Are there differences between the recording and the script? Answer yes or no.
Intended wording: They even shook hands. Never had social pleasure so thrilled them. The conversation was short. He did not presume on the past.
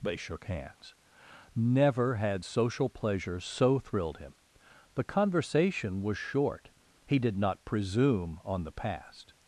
yes